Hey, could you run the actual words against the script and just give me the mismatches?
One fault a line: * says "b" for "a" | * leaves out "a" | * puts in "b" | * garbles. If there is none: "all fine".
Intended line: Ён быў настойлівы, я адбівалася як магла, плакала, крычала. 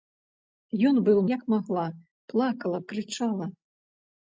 * leaves out "настойлівы я адбівалася"